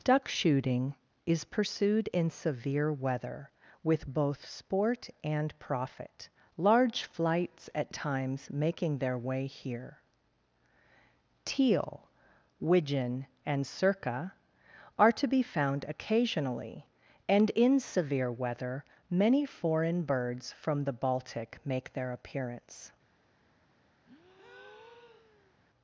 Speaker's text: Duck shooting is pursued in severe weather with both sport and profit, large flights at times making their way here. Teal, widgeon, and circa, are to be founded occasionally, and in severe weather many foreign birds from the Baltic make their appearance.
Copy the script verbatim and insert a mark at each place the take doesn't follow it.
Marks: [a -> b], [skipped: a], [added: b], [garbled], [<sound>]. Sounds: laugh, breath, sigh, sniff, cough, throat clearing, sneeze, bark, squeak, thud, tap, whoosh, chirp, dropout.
Duck shooting is pursued in severe weather with both sport and profit, large flights at times making their way here. Teal, widgeon, and circa, are to be [founded -> found] occasionally, and in severe weather many foreign birds from the Baltic make their appearance. [breath]